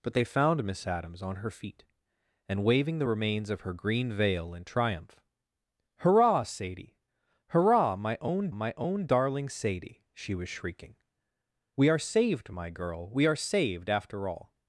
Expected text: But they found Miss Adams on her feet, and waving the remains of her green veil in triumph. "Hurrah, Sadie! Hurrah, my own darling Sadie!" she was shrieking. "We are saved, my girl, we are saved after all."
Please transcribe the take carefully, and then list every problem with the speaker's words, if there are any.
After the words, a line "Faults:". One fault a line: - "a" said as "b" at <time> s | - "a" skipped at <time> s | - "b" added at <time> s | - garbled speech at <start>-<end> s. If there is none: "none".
But they found Miss Adams on her feet, and waving the remains of her green veil in triumph. "Hurrah, Sadie! Hurrah, my own my own darling Sadie!" she was shrieking. "We are saved, my girl, we are saved after all."
Faults:
- "my own" added at 8.5 s